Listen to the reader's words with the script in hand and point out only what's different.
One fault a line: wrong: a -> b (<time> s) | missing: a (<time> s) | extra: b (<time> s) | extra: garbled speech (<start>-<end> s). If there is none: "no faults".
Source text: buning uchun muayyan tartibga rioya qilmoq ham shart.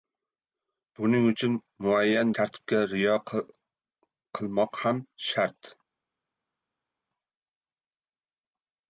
no faults